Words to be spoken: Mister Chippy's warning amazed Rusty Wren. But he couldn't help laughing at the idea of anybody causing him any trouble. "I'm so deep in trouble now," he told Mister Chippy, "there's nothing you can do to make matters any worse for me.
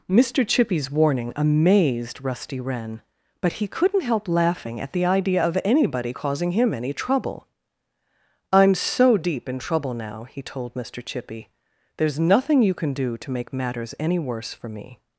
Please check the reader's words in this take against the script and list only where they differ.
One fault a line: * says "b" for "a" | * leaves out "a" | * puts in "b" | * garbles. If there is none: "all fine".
all fine